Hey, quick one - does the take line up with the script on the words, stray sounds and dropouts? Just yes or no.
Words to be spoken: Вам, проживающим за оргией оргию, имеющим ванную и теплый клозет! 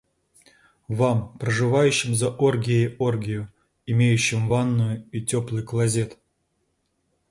yes